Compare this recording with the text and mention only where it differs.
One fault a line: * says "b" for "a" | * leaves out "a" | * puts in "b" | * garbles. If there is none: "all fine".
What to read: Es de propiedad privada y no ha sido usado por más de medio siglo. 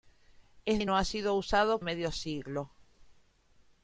* leaves out "de propiedad privada"
* leaves out "por más de"